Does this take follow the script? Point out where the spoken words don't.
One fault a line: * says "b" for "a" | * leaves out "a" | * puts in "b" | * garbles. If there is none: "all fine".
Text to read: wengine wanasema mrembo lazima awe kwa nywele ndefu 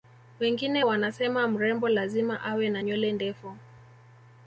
* says "na" for "kwa"